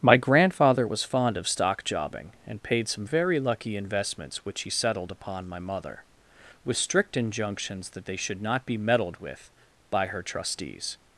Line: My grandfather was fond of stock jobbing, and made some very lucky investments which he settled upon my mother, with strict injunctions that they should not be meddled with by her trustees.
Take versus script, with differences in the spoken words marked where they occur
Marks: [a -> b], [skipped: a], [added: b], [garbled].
My grandfather was fond of stock jobbing, and [made -> paid] some very lucky investments which he settled upon my mother, with strict injunctions that they should not be meddled with by her trustees.